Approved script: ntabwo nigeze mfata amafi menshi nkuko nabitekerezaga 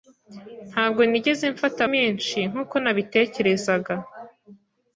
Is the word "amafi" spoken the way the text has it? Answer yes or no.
no